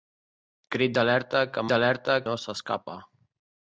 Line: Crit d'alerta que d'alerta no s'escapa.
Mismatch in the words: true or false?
false